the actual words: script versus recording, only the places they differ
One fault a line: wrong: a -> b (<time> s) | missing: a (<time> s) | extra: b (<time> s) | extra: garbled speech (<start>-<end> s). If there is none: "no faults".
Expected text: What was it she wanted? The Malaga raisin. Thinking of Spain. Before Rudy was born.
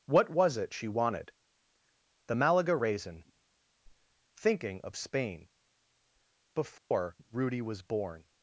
no faults